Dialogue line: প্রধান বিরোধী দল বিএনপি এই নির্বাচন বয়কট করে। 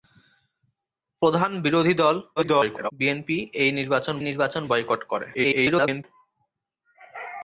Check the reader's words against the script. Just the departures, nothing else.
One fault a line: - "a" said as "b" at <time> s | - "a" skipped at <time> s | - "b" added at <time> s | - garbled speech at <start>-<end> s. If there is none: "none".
- garbled speech at 2.4-2.9 s
- "নির্বাচন" added at 4.2 s
- garbled speech at 5.3-6.0 s